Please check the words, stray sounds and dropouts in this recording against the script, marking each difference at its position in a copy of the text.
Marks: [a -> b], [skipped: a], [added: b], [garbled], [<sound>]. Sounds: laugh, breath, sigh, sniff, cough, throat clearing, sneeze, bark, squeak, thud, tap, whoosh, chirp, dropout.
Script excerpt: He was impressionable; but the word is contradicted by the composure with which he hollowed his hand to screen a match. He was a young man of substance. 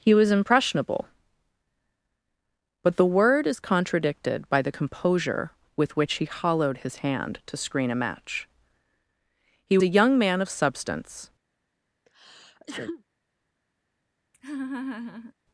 He was impressionable; but the word is contradicted by the composure with which he hollowed his hand to screen a match. He [skipped: was] a young man of substance. [sneeze] [laugh]